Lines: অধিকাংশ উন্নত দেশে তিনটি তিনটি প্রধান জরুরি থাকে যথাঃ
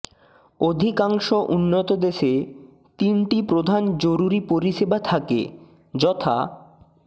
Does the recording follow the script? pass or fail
fail